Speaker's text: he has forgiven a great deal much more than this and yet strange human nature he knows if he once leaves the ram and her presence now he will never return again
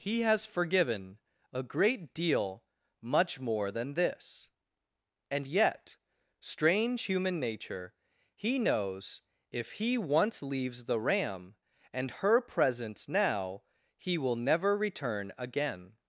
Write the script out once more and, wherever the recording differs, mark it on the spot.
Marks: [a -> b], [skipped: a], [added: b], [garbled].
he has forgiven a great deal much more than this and yet strange human nature he knows if he once leaves the ram and her presence now he will never return again